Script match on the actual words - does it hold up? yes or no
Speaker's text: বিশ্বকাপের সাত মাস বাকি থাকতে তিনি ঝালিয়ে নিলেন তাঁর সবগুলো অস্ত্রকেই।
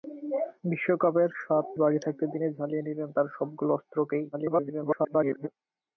no